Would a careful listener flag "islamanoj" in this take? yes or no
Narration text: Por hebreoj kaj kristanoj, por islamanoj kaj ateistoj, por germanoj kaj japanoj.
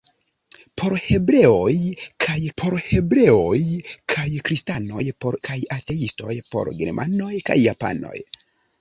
yes